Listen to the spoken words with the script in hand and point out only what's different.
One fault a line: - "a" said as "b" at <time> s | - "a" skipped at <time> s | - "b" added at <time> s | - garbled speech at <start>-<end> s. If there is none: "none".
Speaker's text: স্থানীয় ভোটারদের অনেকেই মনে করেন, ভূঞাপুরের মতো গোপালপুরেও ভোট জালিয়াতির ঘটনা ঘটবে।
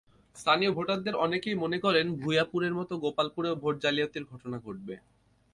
none